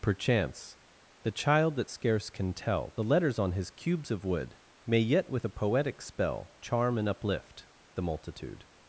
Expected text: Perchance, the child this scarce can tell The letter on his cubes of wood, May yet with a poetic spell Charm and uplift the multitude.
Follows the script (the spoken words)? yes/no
no